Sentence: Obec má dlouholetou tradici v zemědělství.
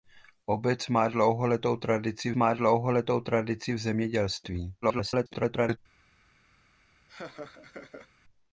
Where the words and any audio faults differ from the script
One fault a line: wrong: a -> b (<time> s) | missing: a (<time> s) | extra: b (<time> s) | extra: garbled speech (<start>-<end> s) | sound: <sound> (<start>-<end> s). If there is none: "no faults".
extra: má dlouholetou tradici (2.3 s)
extra: garbled speech (4.8-5.8 s)
sound: laugh (7.1-8.1 s)